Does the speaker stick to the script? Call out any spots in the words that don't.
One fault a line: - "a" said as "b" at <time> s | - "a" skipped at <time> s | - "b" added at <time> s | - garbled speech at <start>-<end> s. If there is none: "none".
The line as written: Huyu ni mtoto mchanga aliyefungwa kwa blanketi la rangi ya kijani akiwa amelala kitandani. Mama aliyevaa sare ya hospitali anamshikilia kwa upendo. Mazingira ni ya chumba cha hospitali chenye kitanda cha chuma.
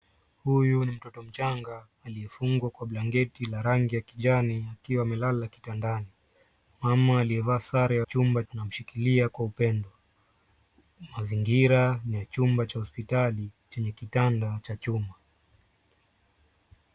- "hospitali" said as "chumba" at 8.0 s